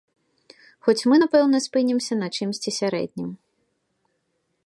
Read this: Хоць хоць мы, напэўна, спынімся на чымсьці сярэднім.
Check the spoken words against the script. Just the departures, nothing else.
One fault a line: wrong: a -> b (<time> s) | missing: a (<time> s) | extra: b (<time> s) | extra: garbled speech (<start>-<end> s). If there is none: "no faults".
missing: хоць (1.1 s)